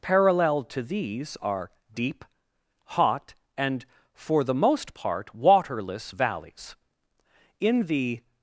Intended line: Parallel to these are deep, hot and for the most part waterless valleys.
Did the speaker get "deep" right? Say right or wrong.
right